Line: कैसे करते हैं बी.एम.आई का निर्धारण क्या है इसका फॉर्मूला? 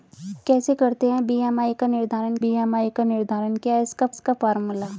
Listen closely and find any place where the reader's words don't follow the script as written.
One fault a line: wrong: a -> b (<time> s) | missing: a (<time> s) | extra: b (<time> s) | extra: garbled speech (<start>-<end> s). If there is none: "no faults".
extra: बी.एम.आई का निर्धारण (2.4 s)
extra: इसका (4.1 s)